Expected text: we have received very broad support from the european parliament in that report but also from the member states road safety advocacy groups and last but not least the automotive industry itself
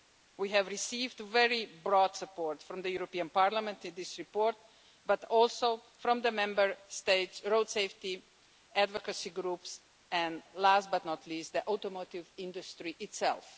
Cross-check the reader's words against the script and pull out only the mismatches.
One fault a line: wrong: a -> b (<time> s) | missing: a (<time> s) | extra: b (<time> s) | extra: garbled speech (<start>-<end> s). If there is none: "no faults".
wrong: that -> this (3.9 s)